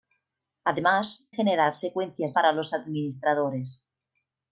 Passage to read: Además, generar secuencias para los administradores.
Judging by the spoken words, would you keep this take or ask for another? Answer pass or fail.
pass